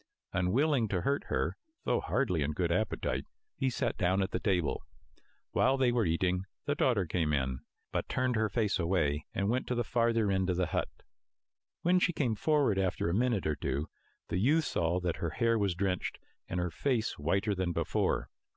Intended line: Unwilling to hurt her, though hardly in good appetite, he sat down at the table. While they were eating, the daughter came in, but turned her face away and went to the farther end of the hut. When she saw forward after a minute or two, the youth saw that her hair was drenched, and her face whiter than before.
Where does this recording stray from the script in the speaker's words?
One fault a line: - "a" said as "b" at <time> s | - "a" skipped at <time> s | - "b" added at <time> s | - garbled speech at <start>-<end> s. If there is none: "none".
- "saw" said as "came" at 12.1 s